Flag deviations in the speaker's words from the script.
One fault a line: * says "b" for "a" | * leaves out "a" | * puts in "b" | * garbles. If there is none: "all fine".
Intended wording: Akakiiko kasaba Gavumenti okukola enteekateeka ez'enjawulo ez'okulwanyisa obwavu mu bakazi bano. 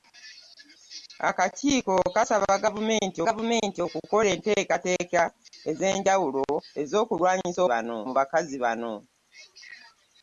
* puts in "Gavumenti"
* says "bano" for "obwavu"